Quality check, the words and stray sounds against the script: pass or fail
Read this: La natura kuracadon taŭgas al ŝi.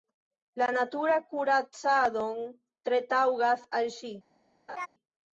fail